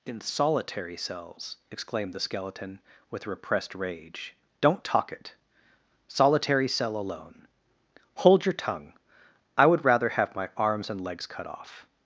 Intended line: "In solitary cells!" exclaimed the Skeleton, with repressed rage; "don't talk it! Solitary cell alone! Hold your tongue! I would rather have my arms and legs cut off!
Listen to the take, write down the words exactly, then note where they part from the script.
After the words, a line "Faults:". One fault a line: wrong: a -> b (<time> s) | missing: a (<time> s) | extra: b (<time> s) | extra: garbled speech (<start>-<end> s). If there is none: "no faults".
"In solitary cells!" exclaimed the Skeleton, with repressed rage; "don't talk it! Solitary cell alone! Hold your tongue! I would rather have my arms and legs cut off!
Faults:
no faults